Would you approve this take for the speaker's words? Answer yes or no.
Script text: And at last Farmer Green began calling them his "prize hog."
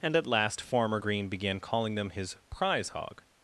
yes